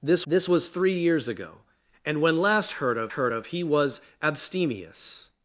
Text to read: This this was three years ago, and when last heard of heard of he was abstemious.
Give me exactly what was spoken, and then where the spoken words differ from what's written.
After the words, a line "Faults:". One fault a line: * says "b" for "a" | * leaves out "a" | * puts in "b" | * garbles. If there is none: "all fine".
This this was three years ago, and when last heard of heard of he was abstemious.
Faults:
all fine